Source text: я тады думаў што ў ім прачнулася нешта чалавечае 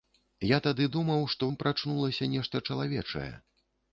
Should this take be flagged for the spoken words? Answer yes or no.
yes